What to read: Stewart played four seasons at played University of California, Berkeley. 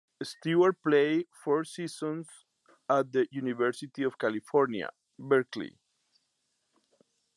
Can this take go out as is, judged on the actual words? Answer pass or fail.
fail